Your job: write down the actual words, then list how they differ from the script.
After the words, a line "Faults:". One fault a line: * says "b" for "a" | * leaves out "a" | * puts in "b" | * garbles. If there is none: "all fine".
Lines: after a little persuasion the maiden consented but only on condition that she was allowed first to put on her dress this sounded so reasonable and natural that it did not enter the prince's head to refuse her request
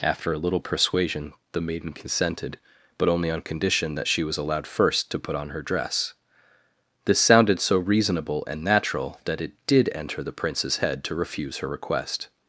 after a little persuasion the maiden consented but only on condition that she was allowed first to put on her dress this sounded so reasonable and natural that it did enter the prince's head to refuse her request
Faults:
* leaves out "not"